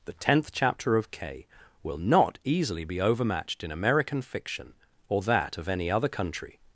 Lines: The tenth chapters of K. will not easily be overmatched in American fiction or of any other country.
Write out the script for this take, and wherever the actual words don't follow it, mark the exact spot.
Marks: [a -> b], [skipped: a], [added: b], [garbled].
The tenth [chapters -> chapter] of K. will not easily be overmatched in American fiction or [added: that] of any other country.